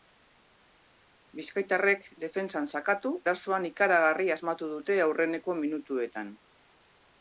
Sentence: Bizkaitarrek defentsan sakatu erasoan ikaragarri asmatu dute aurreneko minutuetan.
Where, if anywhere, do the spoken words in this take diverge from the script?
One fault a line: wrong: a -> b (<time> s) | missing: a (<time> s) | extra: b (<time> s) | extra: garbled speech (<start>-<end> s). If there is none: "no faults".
no faults